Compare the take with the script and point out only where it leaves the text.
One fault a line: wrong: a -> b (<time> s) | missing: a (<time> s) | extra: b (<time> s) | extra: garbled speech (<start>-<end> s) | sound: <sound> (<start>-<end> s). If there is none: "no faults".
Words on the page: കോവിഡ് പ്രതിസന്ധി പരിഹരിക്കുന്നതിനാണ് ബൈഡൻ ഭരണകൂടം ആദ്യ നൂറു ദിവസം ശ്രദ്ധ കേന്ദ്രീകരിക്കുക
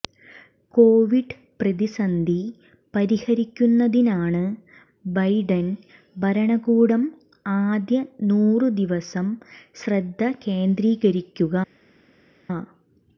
no faults